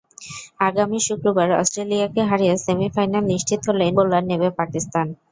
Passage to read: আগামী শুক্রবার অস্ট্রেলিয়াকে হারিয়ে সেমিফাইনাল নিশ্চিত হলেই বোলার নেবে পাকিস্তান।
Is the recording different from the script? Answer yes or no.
no